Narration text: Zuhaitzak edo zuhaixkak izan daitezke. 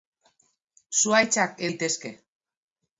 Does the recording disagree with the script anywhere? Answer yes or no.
yes